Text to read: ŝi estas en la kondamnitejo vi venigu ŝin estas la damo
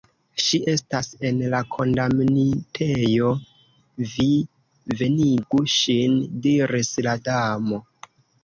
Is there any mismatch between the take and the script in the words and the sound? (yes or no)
yes